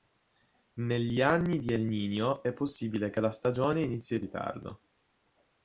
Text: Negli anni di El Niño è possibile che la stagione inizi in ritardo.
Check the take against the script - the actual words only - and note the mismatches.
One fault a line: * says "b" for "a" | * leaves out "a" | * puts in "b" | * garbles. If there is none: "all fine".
all fine